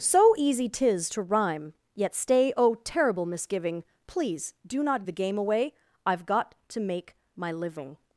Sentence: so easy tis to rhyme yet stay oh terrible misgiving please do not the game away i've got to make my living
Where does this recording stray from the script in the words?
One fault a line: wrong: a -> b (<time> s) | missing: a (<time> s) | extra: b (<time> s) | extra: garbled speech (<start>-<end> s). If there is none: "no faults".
no faults